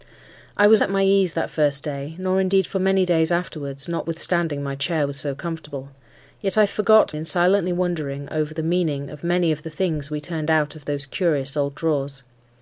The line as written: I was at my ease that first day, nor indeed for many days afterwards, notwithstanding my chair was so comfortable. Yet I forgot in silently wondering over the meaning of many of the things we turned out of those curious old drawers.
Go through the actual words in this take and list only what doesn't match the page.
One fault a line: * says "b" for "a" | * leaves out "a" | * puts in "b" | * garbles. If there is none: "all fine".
all fine